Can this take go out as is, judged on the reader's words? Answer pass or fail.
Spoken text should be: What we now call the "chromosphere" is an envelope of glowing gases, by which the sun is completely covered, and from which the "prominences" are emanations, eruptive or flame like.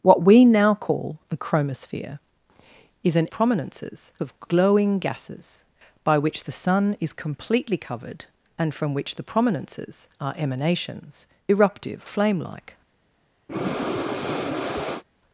fail